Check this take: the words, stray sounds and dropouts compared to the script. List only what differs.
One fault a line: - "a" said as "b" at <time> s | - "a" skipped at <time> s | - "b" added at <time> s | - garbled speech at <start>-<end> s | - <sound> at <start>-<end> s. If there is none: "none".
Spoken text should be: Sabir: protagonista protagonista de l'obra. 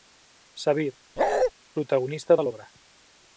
- bark at 1.2-1.5 s
- "protagonista" skipped at 2.4 s